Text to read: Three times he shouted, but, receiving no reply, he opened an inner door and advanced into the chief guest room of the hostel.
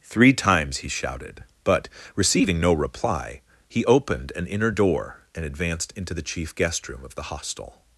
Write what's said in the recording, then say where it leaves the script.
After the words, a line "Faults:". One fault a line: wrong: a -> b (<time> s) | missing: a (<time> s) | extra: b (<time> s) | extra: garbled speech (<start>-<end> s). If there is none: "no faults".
Three times he shouted, but, receiving no reply, he opened an inner door and advanced into the chief guest room of the hostel.
Faults:
no faults